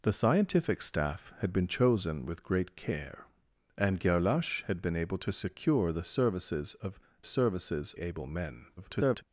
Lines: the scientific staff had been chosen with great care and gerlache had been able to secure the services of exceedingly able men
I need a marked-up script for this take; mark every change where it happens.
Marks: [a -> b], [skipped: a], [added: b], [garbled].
the scientific staff had been chosen with great care and gerlache had been able to secure the services of [exceedingly -> services] able men [garbled]